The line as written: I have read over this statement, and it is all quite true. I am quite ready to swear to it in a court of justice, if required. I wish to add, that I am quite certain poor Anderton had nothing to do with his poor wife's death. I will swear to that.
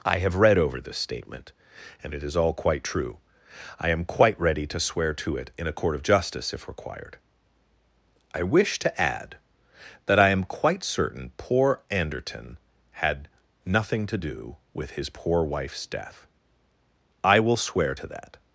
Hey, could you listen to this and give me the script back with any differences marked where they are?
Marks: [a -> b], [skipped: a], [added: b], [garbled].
I have read over this statement, and it is all quite true. I am quite ready to swear to it in a court of justice, if required. I wish to add, that I am quite certain poor Anderton had nothing to do with his poor wife's death. I will swear to that.